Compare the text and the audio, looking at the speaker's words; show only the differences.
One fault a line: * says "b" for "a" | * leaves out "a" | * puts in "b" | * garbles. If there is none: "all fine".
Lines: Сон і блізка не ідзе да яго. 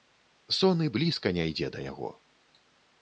all fine